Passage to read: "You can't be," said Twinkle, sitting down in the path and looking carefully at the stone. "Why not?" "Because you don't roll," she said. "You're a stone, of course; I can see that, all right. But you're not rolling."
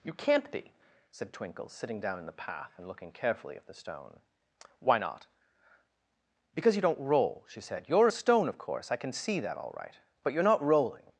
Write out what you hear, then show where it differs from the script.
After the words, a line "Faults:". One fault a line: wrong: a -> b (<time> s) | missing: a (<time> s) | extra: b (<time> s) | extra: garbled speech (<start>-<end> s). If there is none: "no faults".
"You can't be," said Twinkle, sitting down in the path and looking carefully at the stone. "Why not?" "Because you don't roll," she said. "You're a stone, of course; I can see that, all right. But you're not rolling."
Faults:
no faults